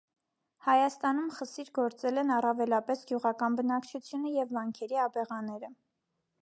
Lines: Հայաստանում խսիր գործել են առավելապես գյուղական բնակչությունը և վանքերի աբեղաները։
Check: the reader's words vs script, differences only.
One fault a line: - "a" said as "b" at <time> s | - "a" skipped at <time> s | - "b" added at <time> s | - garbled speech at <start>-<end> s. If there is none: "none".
none